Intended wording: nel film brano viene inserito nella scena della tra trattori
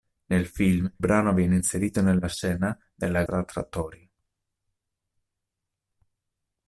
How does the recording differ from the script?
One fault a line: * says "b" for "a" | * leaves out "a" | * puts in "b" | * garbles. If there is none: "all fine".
all fine